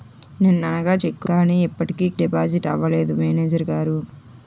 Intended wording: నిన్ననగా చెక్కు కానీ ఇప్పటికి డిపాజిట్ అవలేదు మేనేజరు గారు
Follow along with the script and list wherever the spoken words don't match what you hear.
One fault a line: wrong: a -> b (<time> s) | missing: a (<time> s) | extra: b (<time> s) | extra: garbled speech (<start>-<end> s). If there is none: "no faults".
no faults